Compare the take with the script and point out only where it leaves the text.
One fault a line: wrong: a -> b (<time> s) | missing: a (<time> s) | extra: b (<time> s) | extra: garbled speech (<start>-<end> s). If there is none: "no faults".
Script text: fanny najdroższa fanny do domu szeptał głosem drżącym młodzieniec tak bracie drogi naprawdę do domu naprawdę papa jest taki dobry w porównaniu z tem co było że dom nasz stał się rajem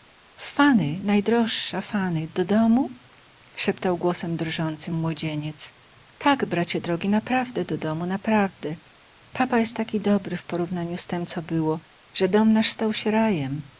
no faults